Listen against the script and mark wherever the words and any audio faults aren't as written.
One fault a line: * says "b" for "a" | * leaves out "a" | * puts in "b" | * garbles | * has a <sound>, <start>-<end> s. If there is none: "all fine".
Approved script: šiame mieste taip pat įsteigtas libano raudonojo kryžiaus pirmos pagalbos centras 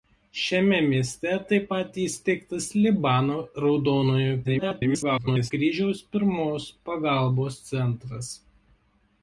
* garbles